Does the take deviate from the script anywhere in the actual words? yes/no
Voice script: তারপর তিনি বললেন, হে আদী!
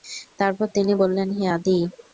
no